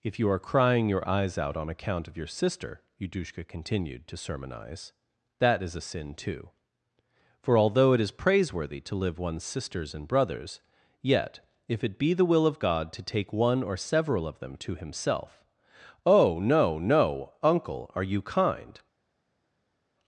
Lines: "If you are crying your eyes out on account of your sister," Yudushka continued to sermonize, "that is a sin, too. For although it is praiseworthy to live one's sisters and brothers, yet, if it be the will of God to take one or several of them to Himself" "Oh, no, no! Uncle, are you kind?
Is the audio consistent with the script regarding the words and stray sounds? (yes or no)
yes